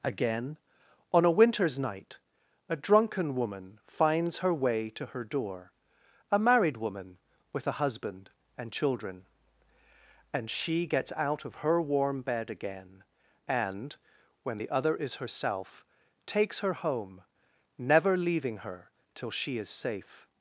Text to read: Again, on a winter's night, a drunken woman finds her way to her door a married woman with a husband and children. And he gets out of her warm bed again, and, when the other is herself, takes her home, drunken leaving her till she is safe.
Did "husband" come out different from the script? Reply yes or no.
no